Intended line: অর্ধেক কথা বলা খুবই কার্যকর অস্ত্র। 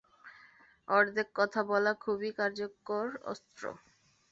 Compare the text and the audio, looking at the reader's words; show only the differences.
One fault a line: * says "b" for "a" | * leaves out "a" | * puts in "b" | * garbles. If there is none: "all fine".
all fine